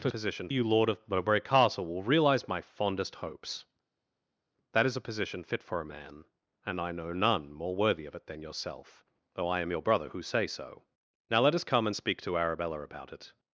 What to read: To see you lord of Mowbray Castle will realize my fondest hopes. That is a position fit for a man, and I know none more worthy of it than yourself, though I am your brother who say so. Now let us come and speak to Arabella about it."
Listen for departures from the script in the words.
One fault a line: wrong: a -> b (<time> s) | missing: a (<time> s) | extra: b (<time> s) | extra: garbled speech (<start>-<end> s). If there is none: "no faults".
wrong: see -> position (0.1 s)